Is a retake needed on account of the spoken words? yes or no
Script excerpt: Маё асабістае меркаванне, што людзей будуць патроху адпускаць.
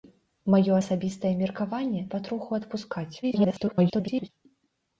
yes